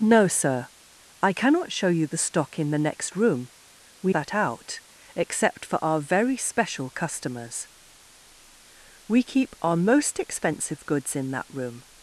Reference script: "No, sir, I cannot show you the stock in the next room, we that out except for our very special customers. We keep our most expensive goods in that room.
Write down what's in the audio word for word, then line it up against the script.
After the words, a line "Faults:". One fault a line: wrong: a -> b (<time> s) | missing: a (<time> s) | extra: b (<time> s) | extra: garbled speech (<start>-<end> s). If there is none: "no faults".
"No, sir, I cannot show you the stock in the next room, we that out except for our very special customers. We keep our most expensive goods in that room.
Faults:
no faults